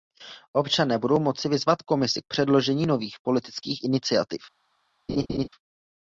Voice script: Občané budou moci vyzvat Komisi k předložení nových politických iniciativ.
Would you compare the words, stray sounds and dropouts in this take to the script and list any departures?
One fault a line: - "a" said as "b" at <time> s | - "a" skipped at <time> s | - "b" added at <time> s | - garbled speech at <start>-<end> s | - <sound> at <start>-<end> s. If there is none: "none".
- laugh at 5.1-5.5 s